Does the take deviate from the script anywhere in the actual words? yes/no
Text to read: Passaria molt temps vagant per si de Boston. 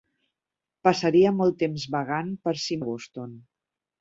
no